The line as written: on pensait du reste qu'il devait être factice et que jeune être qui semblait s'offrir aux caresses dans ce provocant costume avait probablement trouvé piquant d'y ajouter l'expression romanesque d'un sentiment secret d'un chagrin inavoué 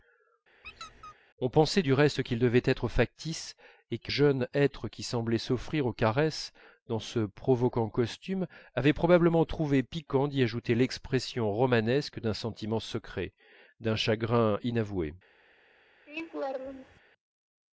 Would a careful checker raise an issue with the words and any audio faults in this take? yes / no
yes